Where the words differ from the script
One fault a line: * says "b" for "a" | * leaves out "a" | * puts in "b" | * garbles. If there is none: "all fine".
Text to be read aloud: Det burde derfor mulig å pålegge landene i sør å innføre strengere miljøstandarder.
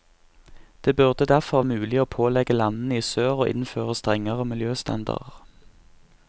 all fine